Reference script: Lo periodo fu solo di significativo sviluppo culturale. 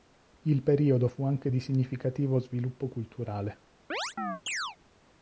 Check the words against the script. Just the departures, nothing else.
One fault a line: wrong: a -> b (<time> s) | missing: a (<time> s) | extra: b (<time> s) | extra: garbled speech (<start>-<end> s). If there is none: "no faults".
wrong: Lo -> Il (0.5 s)
wrong: solo -> anche (1.2 s)